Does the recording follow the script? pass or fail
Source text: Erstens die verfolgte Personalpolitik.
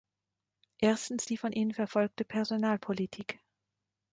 fail